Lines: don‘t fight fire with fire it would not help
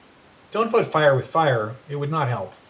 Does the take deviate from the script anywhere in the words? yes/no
no